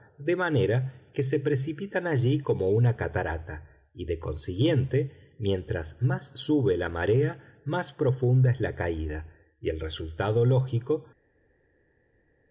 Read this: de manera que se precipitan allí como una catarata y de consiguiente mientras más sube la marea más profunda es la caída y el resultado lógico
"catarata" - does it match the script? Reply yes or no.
yes